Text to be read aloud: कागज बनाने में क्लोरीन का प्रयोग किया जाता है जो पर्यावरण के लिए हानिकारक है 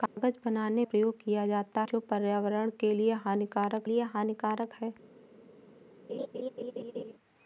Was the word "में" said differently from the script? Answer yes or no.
yes